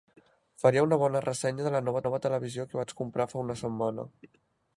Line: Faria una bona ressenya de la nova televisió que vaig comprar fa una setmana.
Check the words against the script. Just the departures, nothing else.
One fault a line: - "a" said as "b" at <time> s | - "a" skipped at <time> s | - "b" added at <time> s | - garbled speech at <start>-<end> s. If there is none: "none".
- "nova" added at 2.1 s